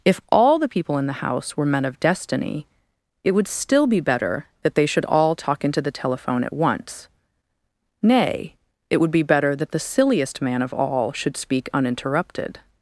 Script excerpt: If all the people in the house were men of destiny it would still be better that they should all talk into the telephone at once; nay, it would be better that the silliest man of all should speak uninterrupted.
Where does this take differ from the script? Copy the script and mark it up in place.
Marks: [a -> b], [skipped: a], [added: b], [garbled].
If all the people in the house were men of destiny it would still be better that they should all talk into the telephone at once; nay, it would be better that the silliest man of all should speak uninterrupted.